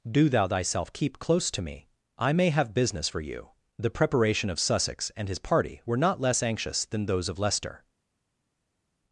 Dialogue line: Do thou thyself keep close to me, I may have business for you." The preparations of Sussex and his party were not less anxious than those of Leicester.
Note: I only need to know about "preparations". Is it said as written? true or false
false